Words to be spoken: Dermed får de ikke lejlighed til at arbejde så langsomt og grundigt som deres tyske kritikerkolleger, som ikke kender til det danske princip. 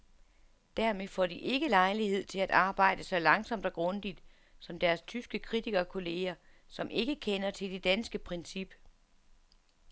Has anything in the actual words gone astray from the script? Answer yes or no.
no